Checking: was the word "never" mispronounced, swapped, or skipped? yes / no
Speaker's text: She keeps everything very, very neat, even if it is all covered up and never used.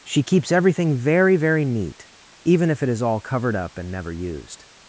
no